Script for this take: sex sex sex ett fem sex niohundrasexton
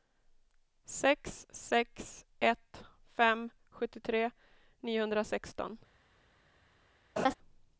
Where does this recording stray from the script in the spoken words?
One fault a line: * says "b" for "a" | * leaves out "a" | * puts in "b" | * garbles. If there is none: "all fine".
* leaves out "sex"
* says "sjuttiotre" for "sex"